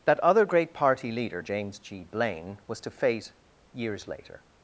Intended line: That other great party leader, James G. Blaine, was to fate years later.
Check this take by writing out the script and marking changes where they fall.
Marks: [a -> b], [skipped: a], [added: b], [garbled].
That other great party leader, James G. Blaine, was to fate years later.